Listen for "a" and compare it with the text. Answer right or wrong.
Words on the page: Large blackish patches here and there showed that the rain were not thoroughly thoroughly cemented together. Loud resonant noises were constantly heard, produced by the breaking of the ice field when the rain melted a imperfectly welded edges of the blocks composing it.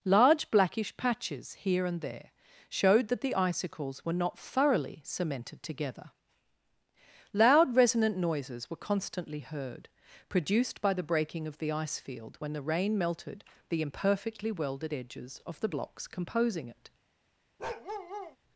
wrong